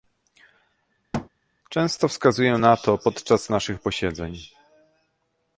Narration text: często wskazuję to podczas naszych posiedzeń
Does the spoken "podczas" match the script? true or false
true